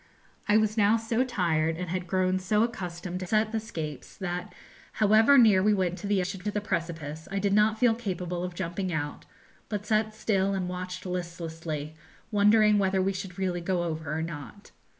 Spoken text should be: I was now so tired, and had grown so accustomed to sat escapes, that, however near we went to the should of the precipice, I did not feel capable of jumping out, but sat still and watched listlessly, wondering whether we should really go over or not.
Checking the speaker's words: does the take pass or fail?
pass